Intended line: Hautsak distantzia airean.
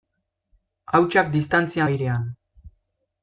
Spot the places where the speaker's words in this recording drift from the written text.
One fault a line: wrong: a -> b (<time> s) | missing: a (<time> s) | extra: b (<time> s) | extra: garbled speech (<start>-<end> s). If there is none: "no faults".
no faults